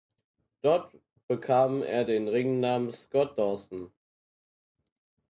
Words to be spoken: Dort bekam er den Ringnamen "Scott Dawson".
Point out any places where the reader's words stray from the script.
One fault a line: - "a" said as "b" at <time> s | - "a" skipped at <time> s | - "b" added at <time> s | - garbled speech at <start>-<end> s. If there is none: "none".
none